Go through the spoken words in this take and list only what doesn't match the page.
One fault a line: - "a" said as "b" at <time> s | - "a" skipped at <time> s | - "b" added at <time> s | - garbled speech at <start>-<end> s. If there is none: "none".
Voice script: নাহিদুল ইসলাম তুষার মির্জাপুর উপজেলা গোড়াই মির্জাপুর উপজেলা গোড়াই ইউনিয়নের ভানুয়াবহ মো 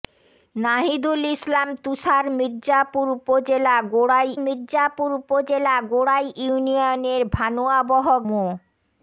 none